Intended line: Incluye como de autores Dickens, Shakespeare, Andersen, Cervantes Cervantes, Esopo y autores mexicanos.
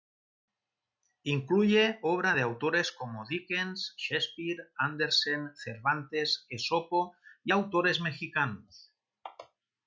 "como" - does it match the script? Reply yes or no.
no